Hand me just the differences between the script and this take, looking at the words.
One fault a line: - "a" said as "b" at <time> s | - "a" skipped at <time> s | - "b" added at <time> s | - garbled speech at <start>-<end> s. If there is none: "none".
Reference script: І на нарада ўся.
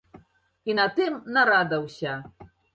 - "тым" added at 1.0 s